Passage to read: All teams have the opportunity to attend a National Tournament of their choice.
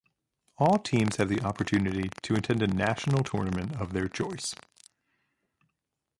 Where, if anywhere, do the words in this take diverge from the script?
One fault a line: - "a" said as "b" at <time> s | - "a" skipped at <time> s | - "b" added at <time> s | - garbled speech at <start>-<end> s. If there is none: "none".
none